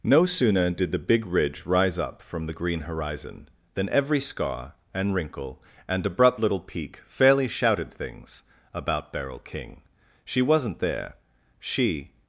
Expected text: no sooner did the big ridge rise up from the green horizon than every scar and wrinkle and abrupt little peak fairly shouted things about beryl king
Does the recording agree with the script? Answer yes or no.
no